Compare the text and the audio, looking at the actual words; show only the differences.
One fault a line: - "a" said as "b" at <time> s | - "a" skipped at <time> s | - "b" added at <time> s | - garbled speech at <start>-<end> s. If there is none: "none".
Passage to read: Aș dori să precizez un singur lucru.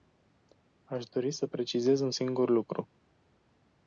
none